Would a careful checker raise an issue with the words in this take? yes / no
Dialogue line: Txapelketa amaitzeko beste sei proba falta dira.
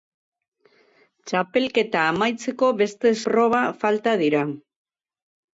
yes